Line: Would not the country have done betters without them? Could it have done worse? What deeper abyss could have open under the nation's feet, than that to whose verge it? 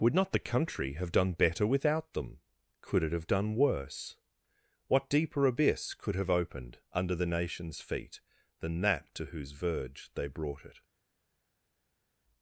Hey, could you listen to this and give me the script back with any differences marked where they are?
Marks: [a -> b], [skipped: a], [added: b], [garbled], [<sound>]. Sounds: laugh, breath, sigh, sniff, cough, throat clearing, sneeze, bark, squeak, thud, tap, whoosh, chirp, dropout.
Would not the country have done [betters -> better] without them? Could it have done worse? What deeper abyss could have [open -> opened] under the nation's feet, than that to whose verge [added: they brought] it?